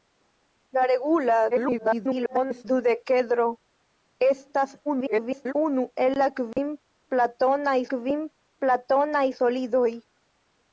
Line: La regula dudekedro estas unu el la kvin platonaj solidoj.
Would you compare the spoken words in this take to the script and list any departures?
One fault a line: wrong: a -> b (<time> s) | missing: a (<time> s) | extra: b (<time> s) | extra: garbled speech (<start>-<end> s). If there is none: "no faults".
extra: garbled speech (1.5-2.6 s)
extra: garbled speech (4.9-5.5 s)
extra: kvin platonaj (8.0 s)